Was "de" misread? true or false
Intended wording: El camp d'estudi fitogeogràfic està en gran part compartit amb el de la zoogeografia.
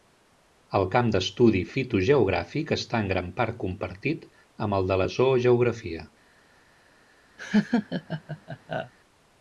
false